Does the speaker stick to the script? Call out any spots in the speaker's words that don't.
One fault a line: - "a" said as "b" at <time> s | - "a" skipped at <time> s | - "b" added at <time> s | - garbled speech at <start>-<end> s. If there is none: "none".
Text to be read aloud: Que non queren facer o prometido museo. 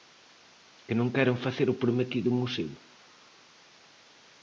none